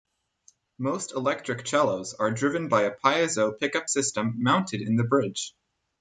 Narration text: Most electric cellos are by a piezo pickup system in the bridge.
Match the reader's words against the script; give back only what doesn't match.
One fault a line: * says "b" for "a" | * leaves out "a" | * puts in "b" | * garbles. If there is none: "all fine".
* puts in "driven"
* puts in "mounted"